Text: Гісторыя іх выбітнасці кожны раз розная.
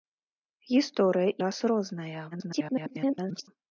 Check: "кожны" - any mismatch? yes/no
yes